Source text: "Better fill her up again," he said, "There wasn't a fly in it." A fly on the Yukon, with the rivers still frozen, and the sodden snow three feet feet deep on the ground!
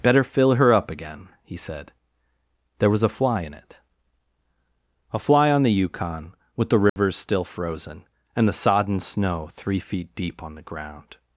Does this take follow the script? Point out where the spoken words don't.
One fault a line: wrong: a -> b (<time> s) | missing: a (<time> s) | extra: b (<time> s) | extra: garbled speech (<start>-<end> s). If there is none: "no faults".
wrong: wasn't -> was (2.9 s)
missing: feet (10.1 s)